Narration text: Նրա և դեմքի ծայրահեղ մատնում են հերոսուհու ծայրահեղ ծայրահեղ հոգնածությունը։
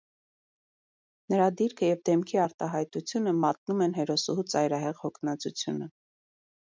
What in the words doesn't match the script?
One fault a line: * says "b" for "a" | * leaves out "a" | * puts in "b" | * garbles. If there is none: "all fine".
* puts in "դիրքը"
* says "արտահայտությունը" for "ծայրահեղ"
* leaves out "ծայրահեղ"